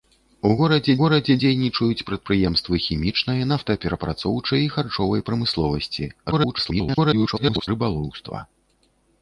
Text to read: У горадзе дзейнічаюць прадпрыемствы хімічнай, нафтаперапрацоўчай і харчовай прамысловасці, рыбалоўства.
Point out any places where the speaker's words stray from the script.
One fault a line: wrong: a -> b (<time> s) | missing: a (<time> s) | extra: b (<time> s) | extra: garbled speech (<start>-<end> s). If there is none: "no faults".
extra: горадзе (1.0 s)
extra: garbled speech (6.3-7.7 s)